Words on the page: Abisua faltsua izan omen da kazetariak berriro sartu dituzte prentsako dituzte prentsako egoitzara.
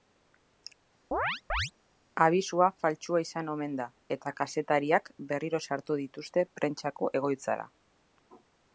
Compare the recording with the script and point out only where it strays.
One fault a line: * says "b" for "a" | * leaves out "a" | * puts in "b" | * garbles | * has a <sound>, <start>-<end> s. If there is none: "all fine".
* has a chirp, 1.1-1.7 s
* puts in "eta"
* leaves out "dituzte prentsako"